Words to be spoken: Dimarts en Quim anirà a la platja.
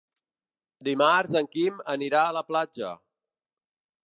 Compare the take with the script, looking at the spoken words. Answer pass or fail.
pass